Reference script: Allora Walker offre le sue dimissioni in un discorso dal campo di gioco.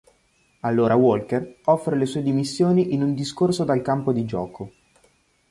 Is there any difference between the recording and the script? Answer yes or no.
no